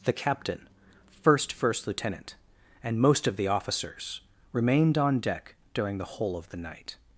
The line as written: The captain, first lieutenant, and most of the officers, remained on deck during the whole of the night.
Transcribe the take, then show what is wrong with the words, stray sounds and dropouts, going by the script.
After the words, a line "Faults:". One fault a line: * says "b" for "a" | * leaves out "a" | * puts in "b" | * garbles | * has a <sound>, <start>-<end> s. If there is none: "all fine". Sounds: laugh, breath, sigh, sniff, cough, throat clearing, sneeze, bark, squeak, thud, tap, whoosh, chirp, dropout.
The captain, first first lieutenant, and most of the officers, remained on deck during the whole of the night.
Faults:
* puts in "first"